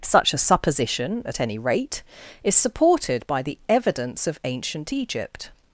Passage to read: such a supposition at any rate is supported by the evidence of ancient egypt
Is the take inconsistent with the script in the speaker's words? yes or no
no